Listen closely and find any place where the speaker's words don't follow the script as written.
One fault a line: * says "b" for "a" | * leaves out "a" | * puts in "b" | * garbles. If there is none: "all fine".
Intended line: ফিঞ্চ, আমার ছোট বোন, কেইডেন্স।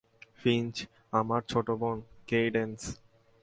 all fine